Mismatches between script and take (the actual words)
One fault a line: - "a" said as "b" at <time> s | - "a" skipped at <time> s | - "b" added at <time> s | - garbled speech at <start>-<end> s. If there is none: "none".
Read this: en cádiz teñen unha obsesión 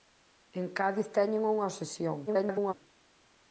- garbled speech at 2.3-2.7 s